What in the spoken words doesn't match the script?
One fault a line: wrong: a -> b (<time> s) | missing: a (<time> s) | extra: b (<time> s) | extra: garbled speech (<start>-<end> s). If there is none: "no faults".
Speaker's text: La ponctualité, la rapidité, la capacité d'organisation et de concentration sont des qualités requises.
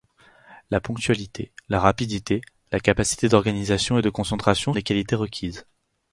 missing: sont (4.7 s)